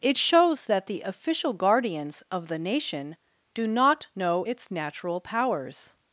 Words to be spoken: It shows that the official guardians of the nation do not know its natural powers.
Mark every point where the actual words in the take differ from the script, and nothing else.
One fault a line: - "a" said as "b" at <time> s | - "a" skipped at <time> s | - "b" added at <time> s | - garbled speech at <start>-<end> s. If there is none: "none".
none